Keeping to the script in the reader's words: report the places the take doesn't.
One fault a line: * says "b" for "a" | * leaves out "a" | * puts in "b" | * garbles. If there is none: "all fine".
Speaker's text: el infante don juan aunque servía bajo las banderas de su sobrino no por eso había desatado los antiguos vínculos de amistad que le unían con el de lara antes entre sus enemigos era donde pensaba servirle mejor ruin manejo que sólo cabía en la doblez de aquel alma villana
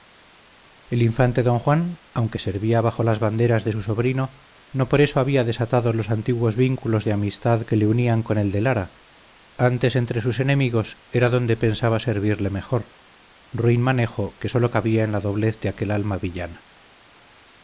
all fine